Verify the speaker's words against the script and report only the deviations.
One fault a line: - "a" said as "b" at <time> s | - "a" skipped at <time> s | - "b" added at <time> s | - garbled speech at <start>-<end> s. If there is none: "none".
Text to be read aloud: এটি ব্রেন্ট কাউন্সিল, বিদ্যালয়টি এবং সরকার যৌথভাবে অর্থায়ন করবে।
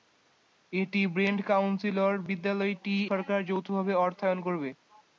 - "এবং" skipped at 3.0 s